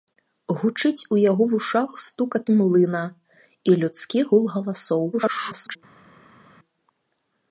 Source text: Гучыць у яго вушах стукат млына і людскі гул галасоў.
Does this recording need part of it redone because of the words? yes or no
yes